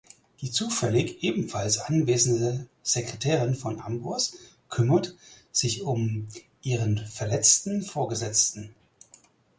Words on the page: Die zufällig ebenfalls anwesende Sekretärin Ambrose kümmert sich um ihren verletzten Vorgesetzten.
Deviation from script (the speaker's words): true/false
true